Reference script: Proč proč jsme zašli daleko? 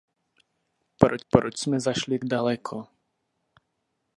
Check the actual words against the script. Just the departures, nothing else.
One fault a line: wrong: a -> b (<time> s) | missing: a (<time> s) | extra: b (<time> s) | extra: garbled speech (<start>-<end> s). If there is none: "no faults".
no faults